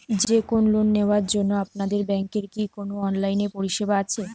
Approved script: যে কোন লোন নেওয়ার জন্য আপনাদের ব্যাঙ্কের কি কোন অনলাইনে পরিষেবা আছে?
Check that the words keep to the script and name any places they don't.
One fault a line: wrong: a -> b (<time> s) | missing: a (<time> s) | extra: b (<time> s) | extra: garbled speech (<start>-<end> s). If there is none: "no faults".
no faults